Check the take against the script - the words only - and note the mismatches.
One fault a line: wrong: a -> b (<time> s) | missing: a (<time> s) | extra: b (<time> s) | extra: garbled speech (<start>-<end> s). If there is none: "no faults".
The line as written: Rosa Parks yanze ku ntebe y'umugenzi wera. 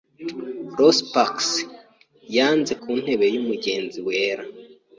no faults